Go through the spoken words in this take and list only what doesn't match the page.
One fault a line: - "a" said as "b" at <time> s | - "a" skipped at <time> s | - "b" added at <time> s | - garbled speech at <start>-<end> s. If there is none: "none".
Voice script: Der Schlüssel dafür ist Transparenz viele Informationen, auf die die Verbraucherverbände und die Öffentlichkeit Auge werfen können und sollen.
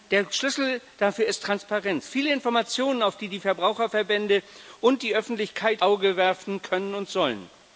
none